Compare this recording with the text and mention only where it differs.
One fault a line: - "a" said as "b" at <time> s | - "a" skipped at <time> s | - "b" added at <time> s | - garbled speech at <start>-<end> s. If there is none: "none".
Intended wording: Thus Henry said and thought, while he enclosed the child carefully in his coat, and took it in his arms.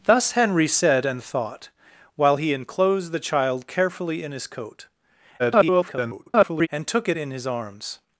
- garbled speech at 5.4-6.7 s